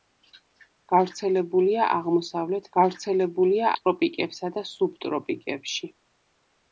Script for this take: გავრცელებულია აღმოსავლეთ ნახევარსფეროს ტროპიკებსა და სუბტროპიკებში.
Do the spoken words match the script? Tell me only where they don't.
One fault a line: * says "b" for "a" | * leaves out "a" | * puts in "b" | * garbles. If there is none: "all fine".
* says "გავრცელებულია" for "ნახევარსფეროს"